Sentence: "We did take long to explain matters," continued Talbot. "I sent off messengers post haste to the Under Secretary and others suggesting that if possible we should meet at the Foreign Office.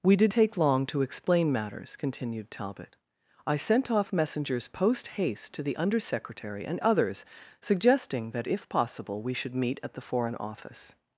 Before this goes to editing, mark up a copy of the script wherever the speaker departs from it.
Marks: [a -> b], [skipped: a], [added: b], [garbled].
"We did take long to explain matters," continued Talbot. "I sent off messengers post haste to the Under Secretary and others suggesting that if possible we should meet at the Foreign Office.